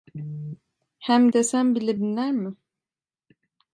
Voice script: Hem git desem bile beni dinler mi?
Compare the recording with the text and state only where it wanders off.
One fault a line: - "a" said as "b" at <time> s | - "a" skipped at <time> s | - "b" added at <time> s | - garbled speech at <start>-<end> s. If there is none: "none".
- "git" skipped at 1.3 s
- "beni" skipped at 2.0 s